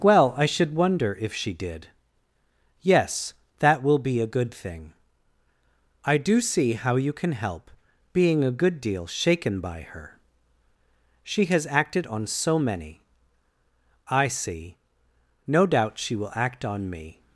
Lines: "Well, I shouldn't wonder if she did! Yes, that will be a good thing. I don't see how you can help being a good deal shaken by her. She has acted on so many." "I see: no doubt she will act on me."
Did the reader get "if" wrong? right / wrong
right